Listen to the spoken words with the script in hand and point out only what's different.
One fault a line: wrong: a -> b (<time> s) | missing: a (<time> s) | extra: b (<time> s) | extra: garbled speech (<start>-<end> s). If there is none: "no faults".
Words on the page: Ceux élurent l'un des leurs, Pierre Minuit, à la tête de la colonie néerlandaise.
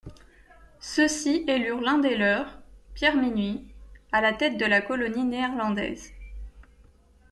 extra: ci (1.1 s)